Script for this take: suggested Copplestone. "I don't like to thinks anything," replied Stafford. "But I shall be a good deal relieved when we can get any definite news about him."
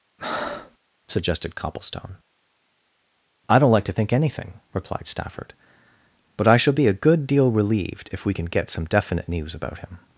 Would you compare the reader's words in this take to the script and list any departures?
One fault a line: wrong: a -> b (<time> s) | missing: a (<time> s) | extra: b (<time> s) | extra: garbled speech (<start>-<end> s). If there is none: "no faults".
wrong: thinks -> think (3.9 s)
wrong: when -> if (8.1 s)
wrong: any -> some (8.7 s)